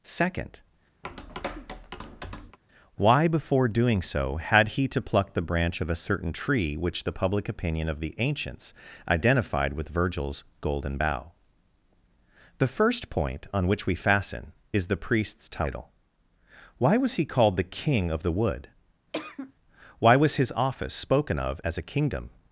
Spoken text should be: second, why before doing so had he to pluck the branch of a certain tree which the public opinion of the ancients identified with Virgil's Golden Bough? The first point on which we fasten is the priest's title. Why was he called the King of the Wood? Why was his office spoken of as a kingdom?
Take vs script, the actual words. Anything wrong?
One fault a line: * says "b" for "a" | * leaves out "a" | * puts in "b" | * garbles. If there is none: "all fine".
all fine